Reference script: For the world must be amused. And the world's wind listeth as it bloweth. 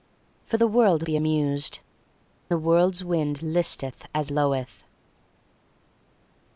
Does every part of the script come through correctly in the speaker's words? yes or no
no